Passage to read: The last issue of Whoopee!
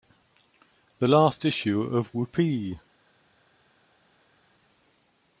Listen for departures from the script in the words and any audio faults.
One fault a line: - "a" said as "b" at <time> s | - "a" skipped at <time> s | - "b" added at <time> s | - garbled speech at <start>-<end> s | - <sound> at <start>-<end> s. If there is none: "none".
none